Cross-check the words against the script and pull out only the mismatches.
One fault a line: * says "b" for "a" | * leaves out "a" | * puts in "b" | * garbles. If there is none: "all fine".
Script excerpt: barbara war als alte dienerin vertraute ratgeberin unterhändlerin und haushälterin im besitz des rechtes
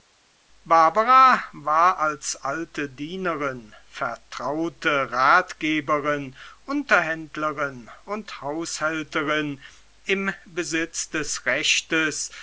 all fine